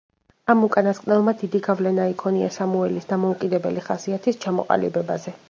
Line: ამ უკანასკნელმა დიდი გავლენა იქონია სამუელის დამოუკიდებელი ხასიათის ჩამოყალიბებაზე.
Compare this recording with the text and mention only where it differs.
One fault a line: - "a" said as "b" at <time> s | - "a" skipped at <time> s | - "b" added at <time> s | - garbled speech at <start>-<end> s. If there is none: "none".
none